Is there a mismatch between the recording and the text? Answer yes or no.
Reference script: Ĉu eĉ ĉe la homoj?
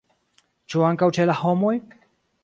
yes